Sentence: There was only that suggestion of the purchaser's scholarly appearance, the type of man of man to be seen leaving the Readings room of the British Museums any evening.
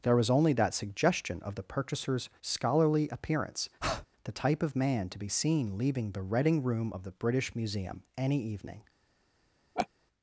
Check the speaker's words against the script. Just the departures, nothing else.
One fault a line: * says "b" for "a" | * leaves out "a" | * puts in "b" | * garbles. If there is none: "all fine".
* leaves out "of man"
* says "Reading" for "Readings"
* says "Museum" for "Museums"